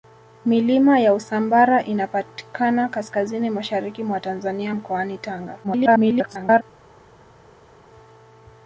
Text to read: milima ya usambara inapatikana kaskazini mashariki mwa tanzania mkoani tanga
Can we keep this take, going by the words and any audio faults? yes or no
no